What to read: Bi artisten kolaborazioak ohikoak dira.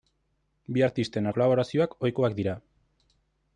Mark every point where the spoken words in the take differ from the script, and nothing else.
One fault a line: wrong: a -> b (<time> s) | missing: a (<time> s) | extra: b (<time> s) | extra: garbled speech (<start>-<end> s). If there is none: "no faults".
no faults